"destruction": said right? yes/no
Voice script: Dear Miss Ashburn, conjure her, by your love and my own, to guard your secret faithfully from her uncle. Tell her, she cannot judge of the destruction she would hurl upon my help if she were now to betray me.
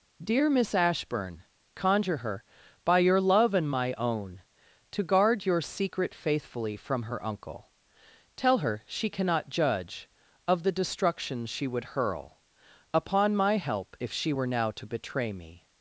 yes